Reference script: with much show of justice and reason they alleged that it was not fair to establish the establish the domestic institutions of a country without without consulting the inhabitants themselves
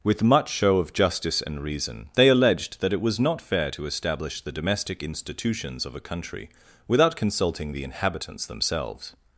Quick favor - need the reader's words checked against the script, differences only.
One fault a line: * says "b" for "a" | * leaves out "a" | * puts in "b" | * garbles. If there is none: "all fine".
* leaves out "establish the"
* leaves out "without"